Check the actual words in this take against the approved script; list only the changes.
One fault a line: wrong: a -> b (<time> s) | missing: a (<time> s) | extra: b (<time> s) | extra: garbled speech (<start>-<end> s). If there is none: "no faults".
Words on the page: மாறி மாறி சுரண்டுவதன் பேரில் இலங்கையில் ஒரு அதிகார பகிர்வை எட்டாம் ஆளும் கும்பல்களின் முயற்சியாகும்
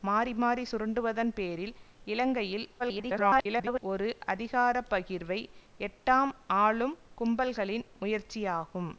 extra: garbled speech (2.8-3.8 s)